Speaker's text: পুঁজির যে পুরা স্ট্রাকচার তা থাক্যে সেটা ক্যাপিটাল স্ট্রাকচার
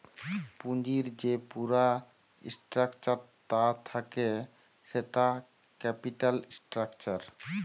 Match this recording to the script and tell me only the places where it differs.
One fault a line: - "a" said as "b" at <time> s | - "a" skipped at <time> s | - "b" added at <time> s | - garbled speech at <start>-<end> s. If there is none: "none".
none